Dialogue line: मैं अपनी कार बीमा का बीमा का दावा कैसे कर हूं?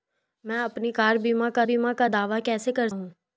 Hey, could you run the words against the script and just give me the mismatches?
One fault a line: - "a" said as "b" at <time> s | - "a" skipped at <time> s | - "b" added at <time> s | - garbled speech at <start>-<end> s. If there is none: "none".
none